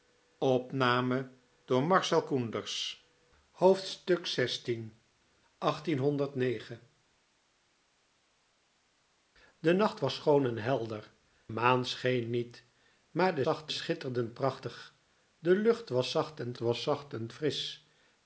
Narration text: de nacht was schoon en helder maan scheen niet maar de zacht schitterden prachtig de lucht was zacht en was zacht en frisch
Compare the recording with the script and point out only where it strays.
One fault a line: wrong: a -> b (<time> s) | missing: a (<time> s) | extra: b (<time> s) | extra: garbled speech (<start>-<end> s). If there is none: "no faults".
no faults